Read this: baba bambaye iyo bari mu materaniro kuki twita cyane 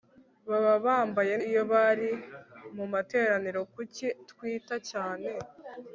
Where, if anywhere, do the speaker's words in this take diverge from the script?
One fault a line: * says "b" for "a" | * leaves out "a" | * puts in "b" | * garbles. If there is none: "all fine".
all fine